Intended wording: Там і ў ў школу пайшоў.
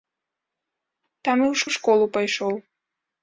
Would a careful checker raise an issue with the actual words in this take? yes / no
no